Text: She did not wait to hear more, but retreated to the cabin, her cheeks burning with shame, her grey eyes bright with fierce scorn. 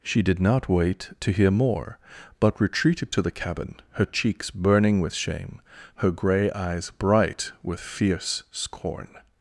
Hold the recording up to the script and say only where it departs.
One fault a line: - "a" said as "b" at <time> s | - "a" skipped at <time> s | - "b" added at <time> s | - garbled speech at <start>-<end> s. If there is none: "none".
none